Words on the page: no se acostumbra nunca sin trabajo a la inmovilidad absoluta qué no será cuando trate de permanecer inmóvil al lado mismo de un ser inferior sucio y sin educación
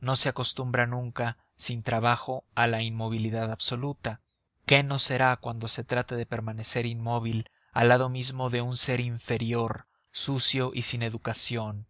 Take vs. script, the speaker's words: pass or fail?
fail